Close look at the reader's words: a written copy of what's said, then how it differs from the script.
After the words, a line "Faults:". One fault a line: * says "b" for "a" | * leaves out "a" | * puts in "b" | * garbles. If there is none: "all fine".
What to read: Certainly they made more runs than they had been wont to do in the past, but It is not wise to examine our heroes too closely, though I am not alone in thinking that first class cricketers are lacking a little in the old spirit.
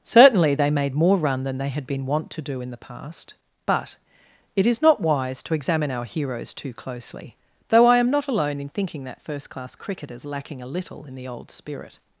Certainly they made more run than they had been wont to do in the past, but It is not wise to examine our heroes too closely, though I am not alone in thinking that first class cricketers lacking a little in the old spirit.
Faults:
* says "run" for "runs"
* leaves out "are"